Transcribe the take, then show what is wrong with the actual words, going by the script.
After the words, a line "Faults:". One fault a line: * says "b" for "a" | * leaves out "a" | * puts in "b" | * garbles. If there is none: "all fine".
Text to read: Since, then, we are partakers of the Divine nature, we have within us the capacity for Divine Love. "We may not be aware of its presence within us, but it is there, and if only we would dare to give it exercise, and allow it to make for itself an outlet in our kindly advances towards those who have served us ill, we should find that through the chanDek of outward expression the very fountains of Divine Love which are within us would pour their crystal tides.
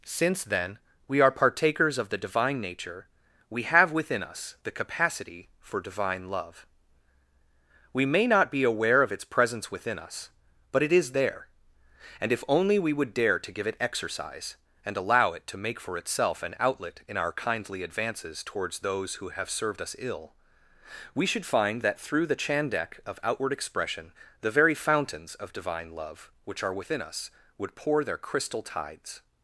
Since, then, we are partakers of the Divine nature, we have within us the capacity for Divine Love. "We may not be aware of its presence within us, but it is there, and if only we would dare to give it exercise, and allow it to make for itself an outlet in our kindly advances towards those who have served us ill, we should find that through the chanDek of outward expression the very fountains of Divine Love which are within us would pour their crystal tides.
Faults:
all fine